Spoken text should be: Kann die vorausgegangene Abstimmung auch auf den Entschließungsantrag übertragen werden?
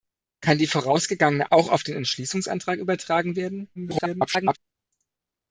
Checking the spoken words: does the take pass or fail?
fail